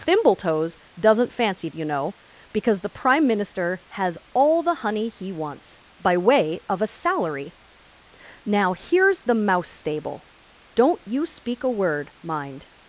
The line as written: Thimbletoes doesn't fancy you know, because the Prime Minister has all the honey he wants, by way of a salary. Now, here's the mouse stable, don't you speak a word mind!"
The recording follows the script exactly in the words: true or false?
true